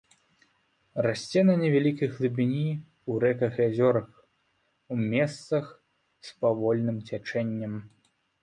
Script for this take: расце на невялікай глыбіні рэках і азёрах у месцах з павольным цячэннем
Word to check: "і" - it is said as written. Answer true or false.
true